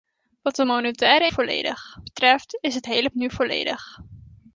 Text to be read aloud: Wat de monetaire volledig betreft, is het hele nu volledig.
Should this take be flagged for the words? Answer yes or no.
no